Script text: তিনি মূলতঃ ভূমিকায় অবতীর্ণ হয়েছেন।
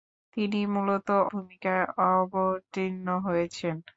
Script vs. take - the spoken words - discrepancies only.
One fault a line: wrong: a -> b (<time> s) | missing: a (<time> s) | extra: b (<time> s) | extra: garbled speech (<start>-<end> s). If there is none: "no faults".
no faults